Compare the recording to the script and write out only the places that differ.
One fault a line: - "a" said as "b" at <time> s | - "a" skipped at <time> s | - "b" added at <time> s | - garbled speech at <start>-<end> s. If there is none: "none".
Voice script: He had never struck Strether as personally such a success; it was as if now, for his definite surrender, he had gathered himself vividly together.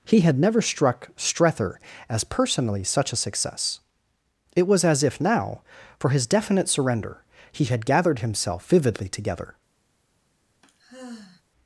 none